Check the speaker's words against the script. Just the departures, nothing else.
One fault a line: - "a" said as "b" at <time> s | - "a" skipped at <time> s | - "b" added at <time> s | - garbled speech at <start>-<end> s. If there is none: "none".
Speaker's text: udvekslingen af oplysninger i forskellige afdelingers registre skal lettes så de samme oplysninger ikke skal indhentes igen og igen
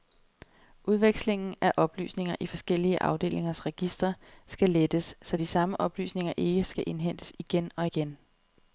none